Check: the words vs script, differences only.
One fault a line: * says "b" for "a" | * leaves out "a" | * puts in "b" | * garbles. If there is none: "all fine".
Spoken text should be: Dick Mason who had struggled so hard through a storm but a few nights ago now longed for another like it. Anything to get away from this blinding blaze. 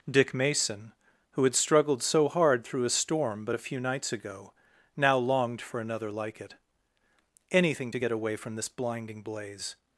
all fine